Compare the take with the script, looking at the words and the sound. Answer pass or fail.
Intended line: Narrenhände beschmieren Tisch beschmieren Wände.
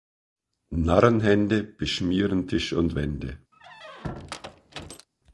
fail